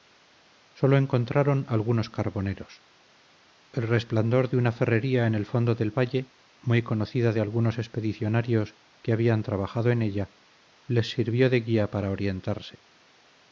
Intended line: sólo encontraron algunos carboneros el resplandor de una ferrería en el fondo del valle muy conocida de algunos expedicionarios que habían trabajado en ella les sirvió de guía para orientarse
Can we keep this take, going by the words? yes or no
yes